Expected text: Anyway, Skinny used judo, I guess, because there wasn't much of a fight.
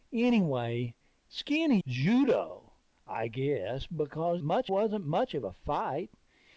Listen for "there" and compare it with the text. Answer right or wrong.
wrong